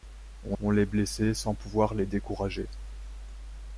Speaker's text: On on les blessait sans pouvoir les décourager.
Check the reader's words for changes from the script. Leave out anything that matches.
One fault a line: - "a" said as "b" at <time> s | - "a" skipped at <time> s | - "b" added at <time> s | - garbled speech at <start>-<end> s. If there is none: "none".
none